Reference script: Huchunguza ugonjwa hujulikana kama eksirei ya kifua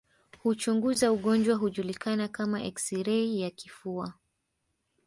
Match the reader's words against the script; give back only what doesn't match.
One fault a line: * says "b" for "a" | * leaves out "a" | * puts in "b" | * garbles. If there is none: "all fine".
all fine